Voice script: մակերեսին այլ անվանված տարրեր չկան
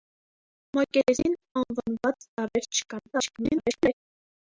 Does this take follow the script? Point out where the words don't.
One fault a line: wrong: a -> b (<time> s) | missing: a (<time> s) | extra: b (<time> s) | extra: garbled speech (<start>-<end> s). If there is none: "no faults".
missing: այլ (1.4 s)
extra: garbled speech (3.1-3.9 s)